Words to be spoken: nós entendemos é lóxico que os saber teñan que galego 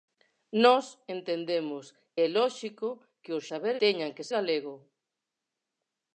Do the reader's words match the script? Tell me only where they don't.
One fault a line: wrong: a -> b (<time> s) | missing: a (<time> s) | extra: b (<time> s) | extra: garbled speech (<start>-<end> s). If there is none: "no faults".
no faults